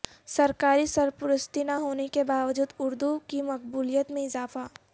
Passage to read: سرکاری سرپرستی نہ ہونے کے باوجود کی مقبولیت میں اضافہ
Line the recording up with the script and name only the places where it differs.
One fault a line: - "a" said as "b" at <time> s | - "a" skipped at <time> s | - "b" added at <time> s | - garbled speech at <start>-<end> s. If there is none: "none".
- "اردو" added at 2.8 s